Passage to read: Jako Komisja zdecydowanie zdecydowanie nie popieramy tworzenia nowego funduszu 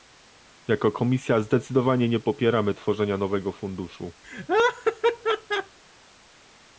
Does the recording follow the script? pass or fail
fail